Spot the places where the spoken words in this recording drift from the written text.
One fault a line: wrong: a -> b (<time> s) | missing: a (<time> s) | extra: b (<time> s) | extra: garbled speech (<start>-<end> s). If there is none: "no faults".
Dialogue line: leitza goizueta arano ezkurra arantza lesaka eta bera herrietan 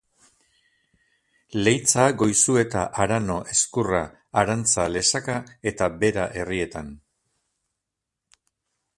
no faults